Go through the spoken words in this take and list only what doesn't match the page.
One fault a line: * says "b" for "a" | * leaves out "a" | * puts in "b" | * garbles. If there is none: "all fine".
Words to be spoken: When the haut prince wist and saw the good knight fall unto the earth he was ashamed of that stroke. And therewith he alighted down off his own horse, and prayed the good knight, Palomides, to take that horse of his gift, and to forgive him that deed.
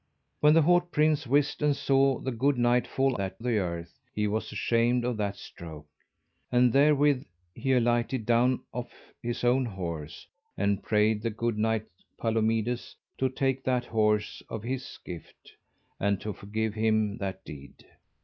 * says "that" for "unto"